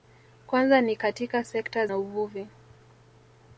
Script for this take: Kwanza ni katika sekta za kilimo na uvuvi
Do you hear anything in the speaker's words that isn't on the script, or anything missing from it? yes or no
yes